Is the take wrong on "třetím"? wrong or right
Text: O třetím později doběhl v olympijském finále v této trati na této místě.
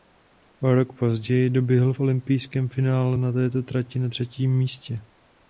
wrong